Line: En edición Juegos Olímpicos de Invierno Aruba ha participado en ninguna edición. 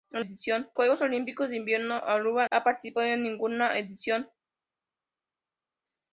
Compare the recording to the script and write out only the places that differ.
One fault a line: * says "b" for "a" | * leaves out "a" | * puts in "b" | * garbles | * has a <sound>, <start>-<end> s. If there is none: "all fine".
all fine